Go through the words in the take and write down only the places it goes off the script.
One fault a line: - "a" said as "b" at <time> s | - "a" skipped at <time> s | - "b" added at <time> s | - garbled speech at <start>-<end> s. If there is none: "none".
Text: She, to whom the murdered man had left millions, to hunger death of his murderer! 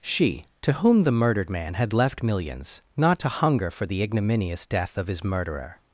- "not" added at 3.0 s
- "for the ignominious" added at 3.7 s